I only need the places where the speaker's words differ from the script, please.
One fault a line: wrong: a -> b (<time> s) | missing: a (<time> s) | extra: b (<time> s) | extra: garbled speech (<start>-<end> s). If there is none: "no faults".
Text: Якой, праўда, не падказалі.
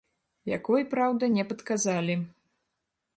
no faults